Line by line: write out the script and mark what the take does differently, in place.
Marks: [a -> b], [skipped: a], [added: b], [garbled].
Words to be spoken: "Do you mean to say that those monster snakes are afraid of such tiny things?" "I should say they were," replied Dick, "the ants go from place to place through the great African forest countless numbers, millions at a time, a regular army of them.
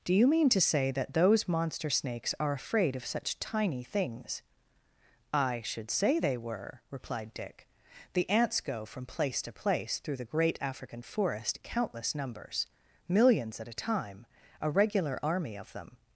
"Do you mean to say that those monster snakes are afraid of such tiny things?" "I should say they were," replied Dick, "the ants go from place to place through the great African forest countless numbers, millions at a time, a regular army of them.